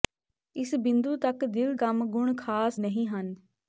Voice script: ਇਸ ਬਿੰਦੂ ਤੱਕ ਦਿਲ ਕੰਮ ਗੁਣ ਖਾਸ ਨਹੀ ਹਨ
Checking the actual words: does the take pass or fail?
pass